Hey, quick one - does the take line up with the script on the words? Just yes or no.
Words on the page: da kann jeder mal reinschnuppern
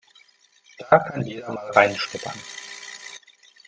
yes